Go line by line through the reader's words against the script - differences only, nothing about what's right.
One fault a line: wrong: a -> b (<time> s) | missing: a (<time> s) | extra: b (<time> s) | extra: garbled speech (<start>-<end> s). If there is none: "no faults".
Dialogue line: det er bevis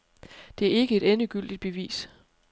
extra: ikke et endegyldigt (0.7 s)